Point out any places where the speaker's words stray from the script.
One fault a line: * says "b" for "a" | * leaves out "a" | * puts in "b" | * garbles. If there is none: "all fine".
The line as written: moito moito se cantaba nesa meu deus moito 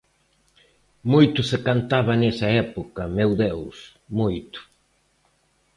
* leaves out "moito"
* puts in "época"